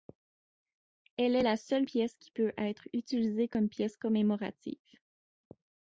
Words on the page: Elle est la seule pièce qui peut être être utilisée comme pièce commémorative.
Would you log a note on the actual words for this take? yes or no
yes